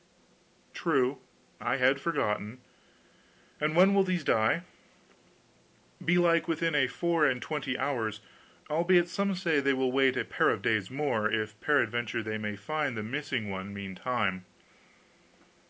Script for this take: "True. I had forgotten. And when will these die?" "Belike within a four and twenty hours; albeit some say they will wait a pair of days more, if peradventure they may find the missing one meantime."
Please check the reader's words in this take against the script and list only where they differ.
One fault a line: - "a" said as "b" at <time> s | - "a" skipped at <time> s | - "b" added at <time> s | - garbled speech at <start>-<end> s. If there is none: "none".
none